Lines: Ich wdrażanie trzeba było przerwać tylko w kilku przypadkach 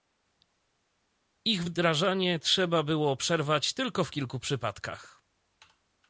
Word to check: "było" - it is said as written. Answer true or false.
true